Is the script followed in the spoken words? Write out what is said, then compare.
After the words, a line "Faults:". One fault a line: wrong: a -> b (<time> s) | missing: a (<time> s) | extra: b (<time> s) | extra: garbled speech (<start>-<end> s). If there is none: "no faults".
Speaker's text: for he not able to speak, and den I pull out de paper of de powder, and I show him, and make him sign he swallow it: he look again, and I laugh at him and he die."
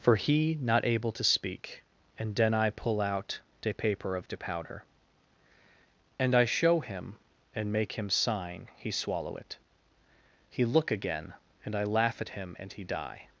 for he not able to speak, and den I pull out de paper of de powder, and I show him, and make him sign he swallow it: he look again, and I laugh at him and he die."
Faults:
no faults